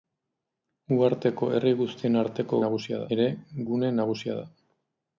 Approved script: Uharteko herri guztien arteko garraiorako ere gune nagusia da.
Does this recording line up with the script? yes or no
no